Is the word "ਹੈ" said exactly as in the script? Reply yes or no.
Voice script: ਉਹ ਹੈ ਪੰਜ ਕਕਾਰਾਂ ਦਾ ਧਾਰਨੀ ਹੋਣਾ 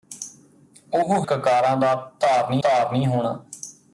no